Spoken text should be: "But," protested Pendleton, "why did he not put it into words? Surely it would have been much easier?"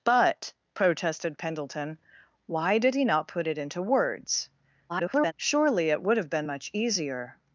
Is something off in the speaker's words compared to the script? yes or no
yes